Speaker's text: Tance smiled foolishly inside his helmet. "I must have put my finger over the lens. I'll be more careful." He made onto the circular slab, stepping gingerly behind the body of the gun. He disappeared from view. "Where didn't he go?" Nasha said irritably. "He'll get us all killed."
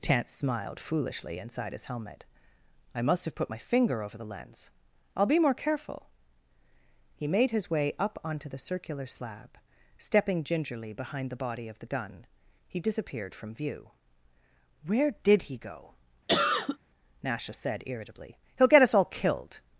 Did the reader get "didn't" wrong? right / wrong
wrong